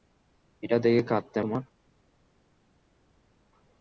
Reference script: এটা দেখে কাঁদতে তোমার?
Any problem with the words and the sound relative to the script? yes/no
no